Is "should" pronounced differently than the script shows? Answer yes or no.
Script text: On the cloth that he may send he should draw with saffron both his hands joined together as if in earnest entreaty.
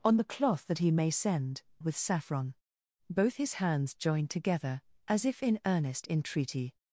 yes